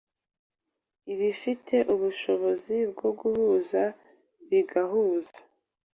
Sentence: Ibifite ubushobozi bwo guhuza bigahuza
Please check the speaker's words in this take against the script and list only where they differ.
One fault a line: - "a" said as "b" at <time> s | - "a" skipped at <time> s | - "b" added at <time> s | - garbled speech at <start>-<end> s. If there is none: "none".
none